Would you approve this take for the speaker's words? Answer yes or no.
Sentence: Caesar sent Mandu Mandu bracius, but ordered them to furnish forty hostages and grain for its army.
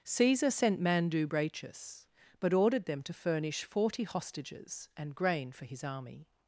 no